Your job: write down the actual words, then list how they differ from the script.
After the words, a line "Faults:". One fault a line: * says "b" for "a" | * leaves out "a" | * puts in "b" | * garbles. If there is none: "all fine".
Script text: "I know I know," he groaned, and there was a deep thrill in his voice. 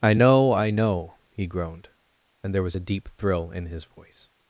"I know I know," he groaned, and there was a deep thrill in his voice.
Faults:
all fine